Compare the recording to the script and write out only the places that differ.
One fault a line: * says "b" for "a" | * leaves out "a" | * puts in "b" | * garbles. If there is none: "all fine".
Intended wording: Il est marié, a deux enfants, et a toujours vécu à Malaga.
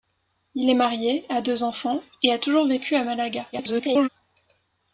* garbles